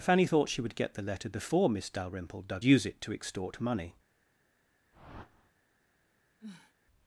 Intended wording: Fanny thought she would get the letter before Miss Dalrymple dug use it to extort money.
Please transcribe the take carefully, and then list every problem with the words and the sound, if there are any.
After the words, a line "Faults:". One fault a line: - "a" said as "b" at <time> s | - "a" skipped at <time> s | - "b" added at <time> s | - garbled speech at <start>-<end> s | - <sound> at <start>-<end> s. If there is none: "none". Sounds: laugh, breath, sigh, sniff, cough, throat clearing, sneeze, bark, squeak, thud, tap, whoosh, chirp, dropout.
Fanny thought she would get the letter before Miss Dalrymple dug use it to extort money.
Faults:
- whoosh at 4.9-5.5 s
- sniff at 6.4-6.7 s